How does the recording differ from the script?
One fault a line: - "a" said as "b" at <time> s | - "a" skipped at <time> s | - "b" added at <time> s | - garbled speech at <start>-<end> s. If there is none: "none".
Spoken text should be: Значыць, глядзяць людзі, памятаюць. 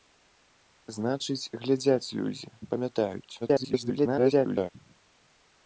- garbled speech at 3.4-4.7 s